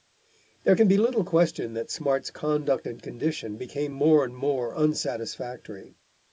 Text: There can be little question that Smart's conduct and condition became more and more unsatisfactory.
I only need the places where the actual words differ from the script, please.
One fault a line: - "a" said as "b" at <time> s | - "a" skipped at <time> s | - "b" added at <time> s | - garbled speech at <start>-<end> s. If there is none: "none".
none